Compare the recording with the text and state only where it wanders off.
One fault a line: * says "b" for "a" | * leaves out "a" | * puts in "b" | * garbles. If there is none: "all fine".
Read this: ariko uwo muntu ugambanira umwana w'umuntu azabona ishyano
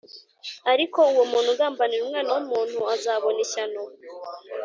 all fine